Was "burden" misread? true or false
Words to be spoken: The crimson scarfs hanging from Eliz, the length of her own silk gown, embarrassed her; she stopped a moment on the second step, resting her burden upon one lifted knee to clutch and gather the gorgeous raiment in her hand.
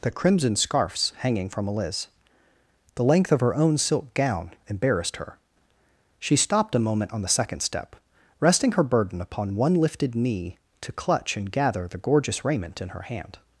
false